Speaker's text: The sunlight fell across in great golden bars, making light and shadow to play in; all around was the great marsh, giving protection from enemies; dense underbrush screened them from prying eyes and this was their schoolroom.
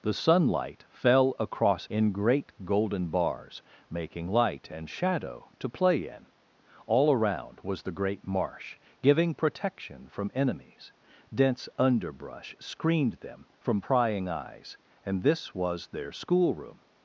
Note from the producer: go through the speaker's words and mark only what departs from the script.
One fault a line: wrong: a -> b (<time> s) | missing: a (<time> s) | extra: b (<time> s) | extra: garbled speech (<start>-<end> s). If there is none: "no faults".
no faults